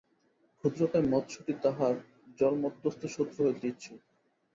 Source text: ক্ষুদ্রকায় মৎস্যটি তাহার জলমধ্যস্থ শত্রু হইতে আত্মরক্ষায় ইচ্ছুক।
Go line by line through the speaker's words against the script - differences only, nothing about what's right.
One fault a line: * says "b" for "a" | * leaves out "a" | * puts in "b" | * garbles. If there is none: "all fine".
* leaves out "আত্মরক্ষায়"